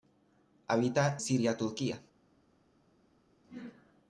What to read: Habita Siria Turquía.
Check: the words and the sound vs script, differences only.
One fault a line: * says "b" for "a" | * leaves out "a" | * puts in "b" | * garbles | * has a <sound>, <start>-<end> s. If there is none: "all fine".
all fine